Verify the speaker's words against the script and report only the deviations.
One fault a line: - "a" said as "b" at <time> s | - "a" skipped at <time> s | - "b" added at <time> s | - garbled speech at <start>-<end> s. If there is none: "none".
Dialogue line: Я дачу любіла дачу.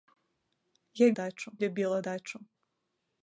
none